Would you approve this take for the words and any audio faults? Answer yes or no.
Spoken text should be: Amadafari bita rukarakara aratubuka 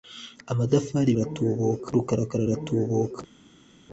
no